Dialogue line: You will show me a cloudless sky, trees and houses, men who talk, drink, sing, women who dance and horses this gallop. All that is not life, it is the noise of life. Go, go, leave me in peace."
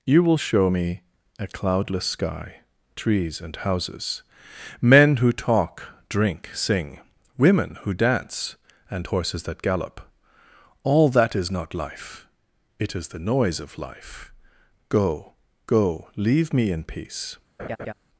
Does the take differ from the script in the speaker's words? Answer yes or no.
yes